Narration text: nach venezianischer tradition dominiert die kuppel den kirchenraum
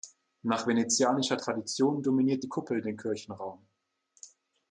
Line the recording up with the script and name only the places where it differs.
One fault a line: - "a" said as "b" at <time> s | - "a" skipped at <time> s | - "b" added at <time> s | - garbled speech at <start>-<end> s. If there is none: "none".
none